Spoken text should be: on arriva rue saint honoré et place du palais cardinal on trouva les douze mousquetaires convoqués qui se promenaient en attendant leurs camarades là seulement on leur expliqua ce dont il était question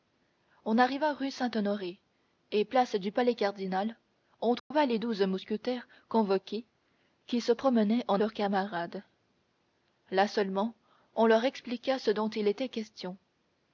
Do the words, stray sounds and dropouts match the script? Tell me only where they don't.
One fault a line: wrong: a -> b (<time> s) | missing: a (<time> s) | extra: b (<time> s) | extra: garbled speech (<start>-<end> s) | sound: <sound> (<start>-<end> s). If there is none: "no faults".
sound: dropout (4.6-4.7 s)
missing: attendant (8.2 s)